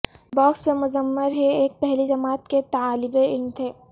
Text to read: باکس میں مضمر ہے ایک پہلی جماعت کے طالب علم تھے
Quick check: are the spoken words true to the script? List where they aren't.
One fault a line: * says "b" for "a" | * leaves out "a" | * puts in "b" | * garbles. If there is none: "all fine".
all fine